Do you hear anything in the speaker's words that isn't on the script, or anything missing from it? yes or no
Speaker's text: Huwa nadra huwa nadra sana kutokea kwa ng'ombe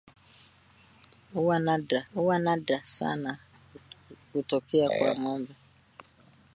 no